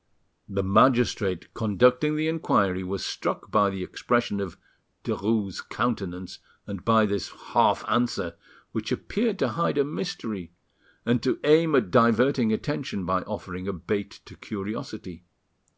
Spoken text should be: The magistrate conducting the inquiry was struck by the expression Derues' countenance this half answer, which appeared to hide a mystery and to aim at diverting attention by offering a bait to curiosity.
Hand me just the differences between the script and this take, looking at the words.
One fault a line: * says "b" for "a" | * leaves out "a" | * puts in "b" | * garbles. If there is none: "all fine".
* puts in "of"
* puts in "and by"